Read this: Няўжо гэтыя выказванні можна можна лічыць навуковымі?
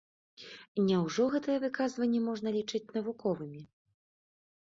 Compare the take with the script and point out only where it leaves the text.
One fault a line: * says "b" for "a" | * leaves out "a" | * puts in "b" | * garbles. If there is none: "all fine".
* leaves out "можна"